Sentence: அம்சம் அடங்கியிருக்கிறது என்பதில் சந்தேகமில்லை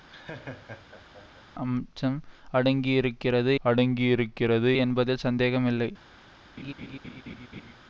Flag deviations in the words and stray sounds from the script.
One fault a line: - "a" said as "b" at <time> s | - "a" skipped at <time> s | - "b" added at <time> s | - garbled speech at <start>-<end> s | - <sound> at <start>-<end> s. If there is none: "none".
- laugh at 0.1-1.4 s
- "அடங்கியிருக்கிறது" added at 3.6 s
- laugh at 6.6-7.7 s